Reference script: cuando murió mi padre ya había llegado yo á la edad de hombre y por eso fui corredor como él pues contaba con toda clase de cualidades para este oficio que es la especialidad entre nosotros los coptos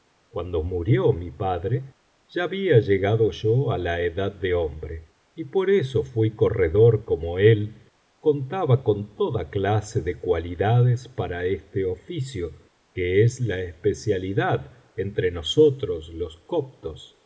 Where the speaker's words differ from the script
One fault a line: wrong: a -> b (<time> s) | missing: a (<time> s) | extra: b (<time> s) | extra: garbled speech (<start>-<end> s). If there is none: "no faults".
missing: pues (7.9 s)